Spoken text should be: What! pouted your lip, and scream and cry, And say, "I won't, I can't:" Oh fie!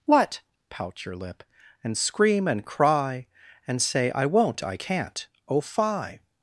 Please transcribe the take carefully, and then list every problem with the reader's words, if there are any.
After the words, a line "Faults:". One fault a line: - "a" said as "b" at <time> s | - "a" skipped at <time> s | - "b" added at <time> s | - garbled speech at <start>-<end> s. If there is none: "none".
What! pout your lip, and scream and cry, And say, "I won't, I can't:" Oh fie!
Faults:
- "pouted" said as "pout" at 0.7 s